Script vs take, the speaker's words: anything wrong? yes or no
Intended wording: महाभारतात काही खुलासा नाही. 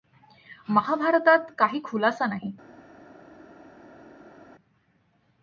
no